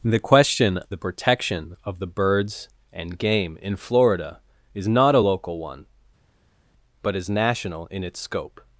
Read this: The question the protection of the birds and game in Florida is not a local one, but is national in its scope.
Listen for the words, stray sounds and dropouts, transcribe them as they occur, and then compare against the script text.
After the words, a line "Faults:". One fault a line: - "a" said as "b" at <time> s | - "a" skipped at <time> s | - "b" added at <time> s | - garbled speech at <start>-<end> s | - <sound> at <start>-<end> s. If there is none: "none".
The question the protection of the birds and game in Florida is not a local one, but is national in its scope.
Faults:
none